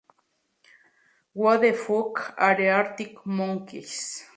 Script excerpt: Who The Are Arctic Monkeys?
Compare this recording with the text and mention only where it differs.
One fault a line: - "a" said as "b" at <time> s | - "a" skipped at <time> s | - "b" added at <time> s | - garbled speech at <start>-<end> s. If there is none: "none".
- "Fuck" added at 1.7 s